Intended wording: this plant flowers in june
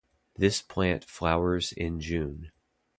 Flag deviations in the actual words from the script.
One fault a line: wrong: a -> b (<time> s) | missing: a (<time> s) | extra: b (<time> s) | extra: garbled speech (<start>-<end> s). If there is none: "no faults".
no faults